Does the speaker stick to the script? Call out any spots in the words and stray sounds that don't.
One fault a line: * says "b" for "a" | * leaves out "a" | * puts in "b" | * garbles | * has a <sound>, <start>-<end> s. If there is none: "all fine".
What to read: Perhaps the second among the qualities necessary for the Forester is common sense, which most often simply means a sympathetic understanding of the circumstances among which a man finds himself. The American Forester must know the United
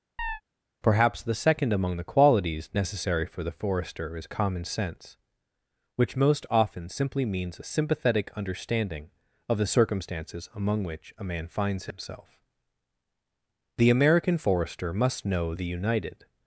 * has a chirp, 0.2-0.4 s